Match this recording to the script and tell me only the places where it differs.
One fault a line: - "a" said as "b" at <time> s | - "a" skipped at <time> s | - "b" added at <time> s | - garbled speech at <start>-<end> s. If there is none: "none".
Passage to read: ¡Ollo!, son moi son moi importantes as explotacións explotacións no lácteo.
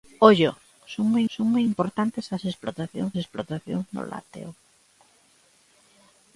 none